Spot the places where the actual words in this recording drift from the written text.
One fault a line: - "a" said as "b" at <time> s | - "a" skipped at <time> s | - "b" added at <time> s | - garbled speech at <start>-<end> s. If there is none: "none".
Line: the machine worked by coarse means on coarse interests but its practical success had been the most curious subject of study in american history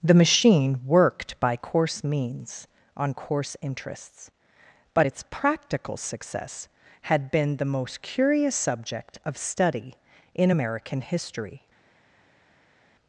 none